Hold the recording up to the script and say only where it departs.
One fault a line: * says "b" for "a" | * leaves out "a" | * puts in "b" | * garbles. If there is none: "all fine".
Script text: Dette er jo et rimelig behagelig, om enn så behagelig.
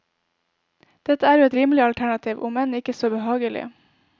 * says "alternativ" for "behagelig"
* puts in "ikke"